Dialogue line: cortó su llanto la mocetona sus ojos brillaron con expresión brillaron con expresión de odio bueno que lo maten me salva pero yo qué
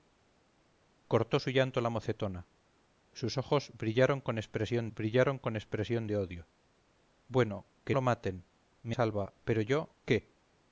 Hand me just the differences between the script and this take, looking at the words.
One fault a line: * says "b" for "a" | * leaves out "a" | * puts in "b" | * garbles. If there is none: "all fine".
all fine